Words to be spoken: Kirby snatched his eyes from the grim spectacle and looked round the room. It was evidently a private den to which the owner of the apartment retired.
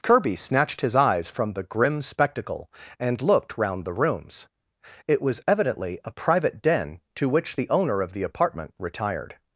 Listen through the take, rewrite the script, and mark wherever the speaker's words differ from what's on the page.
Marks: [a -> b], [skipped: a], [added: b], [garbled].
Kirby snatched his eyes from the grim spectacle and looked round the [room. -> rooms] It was evidently a private den to which the owner of the apartment retired.